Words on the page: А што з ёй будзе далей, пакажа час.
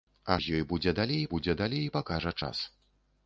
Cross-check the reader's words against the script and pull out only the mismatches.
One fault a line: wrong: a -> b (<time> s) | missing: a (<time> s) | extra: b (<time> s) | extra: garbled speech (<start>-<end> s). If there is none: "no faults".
missing: што (0.4 s)
extra: будзе далей (1.3 s)